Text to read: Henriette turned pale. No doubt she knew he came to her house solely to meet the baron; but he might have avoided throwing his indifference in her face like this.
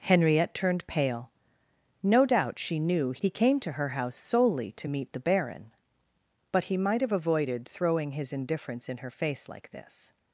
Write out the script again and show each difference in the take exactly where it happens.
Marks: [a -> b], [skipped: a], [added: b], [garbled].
Henriette turned pale. No doubt she knew he came to her house solely to meet the baron; but he might have avoided throwing his indifference in her face like this.